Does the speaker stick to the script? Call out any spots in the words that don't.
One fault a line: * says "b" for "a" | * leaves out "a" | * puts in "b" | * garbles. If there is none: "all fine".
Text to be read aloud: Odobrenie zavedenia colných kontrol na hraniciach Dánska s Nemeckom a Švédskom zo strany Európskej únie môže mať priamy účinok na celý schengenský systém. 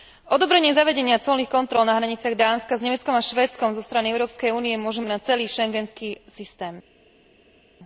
* leaves out "mať priamy účinok"